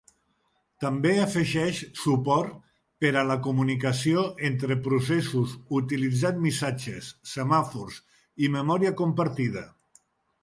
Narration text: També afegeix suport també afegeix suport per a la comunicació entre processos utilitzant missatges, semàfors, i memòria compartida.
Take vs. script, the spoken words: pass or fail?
fail